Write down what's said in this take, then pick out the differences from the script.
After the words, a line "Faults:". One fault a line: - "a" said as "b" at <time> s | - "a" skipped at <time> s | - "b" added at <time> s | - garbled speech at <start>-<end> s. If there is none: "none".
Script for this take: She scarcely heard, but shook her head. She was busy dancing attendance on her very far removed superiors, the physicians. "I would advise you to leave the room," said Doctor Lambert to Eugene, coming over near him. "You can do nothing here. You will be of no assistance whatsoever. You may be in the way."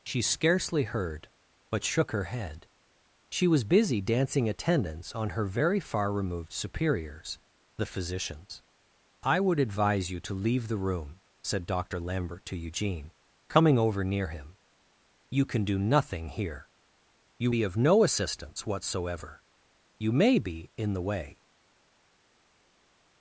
She scarcely heard, but shook her head. She was busy dancing attendance on her very far removed superiors, the physicians. "I would advise you to leave the room," said Doctor Lambert to Eugene, coming over near him. "You can do nothing here. You be of no assistance whatsoever. You may be in the way."
Faults:
- "will" skipped at 17.5 s